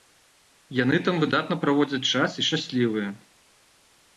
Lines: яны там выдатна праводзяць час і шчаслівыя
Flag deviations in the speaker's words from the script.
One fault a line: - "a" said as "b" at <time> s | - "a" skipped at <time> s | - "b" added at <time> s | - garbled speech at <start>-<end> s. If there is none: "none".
none